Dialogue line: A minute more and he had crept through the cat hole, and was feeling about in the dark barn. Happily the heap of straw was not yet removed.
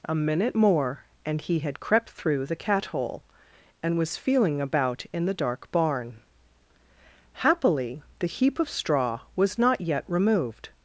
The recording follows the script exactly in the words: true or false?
true